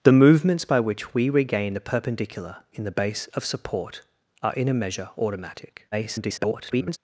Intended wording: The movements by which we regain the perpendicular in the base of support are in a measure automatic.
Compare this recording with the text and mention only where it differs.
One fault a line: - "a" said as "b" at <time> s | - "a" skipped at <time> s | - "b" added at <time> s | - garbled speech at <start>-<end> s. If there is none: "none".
- garbled speech at 5.9-7.0 s